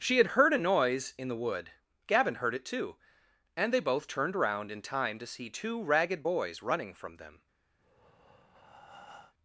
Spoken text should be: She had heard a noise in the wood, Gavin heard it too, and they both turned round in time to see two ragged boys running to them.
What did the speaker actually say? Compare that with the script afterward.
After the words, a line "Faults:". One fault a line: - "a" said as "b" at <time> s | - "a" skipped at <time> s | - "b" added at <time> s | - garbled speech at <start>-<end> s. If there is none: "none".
She had heard a noise in the wood, Gavin heard it too, and they both turned round in time to see two ragged boys running from them.
Faults:
- "to" said as "from" at 6.9 s